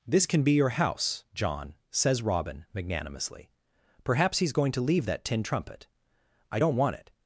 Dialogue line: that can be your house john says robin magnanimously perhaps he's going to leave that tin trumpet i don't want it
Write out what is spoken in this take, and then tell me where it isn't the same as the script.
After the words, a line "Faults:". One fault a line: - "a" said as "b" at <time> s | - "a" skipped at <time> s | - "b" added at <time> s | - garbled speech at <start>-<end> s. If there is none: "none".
this can be your house john says robin magnanimously perhaps he's going to leave that tin trumpet i don't want it
Faults:
- "that" said as "this" at 0.1 s